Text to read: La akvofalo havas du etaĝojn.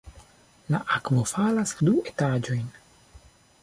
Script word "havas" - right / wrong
wrong